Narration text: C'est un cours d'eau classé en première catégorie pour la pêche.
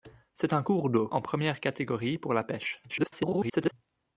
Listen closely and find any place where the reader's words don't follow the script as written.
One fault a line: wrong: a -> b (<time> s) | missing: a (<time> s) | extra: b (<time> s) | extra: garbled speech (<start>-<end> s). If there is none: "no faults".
missing: classé (1.1 s)
extra: garbled speech (2.9-3.7 s)